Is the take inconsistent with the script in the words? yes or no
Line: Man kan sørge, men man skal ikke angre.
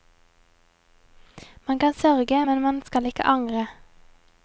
no